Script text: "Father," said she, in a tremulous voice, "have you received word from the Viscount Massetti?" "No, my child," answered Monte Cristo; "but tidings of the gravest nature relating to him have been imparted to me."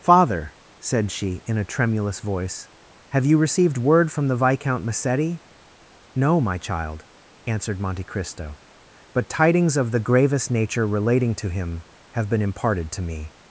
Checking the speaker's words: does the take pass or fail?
pass